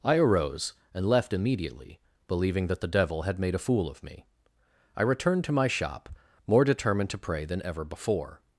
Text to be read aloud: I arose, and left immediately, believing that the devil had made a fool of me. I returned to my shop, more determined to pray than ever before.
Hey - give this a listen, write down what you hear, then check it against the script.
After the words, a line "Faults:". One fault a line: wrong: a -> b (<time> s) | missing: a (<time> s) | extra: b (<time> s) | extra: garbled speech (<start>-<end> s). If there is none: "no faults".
I arose, and left immediately, believing that the devil had made a fool of me. I returned to my shop, more determined to pray than ever before.
Faults:
no faults